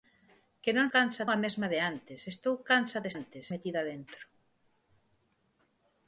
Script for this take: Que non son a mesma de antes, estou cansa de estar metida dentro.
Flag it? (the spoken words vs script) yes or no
yes